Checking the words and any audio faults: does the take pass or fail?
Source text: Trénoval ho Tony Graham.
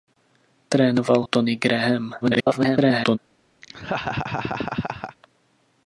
fail